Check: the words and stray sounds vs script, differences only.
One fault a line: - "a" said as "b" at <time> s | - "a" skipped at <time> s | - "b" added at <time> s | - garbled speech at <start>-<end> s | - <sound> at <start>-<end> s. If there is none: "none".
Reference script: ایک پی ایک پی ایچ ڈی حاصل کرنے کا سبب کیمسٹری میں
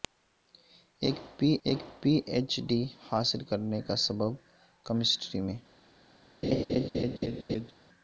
- laugh at 6.4-7.7 s